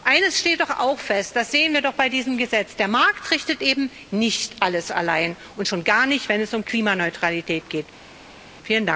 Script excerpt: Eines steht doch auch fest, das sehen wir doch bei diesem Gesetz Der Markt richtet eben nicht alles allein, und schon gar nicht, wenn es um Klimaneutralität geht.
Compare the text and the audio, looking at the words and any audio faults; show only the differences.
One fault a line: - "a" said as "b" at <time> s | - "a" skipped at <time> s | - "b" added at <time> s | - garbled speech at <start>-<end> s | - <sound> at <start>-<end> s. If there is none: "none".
none